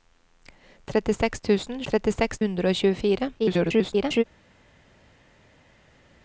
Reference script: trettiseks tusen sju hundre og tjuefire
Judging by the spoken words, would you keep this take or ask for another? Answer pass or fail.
fail